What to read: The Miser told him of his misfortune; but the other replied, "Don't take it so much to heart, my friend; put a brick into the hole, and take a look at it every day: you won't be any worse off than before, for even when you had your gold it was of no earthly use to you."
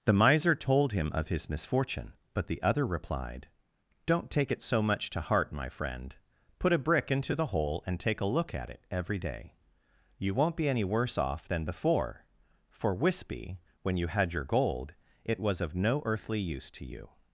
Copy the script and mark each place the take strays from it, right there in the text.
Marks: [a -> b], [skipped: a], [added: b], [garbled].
The Miser told him of his misfortune; but the other replied, "Don't take it so much to heart, my friend; put a brick into the hole, and take a look at it every day: you won't be any worse off than before, for [even -> wispy] when you had your gold it was of no earthly use to you."